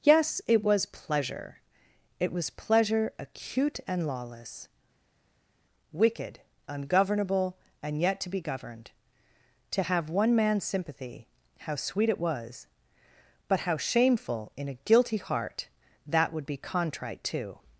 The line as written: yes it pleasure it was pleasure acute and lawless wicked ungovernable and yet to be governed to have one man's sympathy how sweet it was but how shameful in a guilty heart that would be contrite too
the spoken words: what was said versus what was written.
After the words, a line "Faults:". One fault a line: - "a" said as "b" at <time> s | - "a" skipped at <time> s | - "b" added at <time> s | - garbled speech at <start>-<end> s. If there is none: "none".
yes it was pleasure it was pleasure acute and lawless wicked ungovernable and yet to be governed to have one man's sympathy how sweet it was but how shameful in a guilty heart that would be contrite too
Faults:
- "was" added at 0.6 s